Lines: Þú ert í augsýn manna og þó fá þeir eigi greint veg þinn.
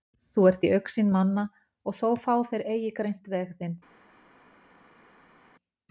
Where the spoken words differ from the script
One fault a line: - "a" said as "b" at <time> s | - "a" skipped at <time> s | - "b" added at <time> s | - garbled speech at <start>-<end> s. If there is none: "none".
none